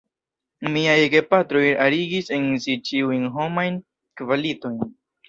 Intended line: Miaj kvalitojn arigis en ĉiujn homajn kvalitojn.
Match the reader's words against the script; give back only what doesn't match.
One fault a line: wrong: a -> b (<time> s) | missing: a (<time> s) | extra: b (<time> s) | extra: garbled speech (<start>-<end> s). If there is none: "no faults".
wrong: kvalitojn -> gepatroj (1.1 s)
extra: si (2.6 s)